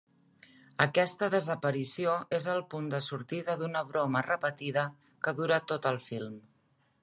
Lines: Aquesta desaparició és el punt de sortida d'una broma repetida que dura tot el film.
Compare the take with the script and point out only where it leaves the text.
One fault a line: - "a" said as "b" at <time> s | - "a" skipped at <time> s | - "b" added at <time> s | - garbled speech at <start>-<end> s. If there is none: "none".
none